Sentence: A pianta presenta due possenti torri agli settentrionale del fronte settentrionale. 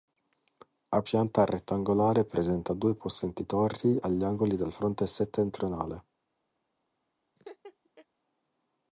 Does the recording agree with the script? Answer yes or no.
no